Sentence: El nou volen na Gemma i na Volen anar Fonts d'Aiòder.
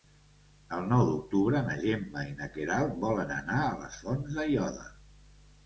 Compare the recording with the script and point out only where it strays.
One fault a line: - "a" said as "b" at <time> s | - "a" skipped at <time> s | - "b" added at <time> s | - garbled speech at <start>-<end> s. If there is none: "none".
- "volen" said as "d'octubre" at 1.1 s
- "Queralt" added at 2.6 s
- "a les" added at 3.7 s